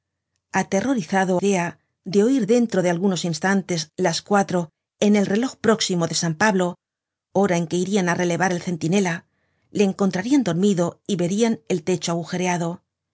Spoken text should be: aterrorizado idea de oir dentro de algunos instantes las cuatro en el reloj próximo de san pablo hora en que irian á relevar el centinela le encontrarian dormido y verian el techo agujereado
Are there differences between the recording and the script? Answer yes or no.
no